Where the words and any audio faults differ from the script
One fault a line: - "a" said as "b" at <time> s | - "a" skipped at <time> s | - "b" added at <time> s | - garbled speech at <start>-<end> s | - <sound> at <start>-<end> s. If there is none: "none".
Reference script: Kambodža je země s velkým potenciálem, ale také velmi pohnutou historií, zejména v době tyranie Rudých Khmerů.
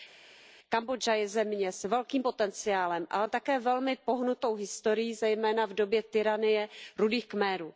none